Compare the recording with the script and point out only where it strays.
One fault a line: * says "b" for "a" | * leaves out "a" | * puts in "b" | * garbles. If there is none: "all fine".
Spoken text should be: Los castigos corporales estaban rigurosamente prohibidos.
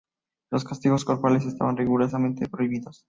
all fine